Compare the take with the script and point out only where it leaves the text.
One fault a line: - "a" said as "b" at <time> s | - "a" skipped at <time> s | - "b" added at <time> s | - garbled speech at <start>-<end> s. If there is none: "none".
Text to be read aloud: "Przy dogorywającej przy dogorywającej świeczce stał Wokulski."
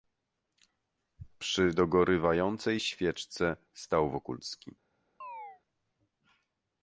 - "przy dogorywającej" skipped at 2.8 s